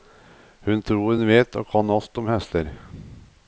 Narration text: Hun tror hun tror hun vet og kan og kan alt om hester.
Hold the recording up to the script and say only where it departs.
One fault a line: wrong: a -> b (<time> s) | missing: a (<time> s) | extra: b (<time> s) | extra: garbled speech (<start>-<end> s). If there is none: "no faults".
missing: tror hun (1.3 s)
missing: og kan (1.9 s)